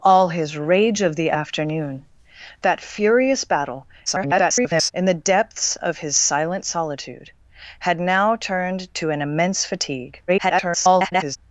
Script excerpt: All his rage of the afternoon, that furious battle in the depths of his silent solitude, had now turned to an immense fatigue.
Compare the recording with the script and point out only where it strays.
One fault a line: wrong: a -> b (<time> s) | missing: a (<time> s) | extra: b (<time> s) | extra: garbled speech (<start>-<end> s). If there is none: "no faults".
extra: garbled speech (4.1-4.9 s)
extra: garbled speech (10.3-11.4 s)